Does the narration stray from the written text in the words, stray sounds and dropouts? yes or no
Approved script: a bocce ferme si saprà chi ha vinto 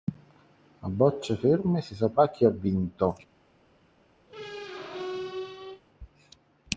yes